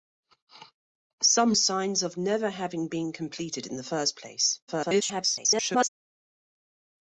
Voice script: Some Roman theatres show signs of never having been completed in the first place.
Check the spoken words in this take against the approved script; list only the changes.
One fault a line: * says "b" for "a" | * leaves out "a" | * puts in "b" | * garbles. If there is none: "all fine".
* leaves out "Roman theatres show"
* garbles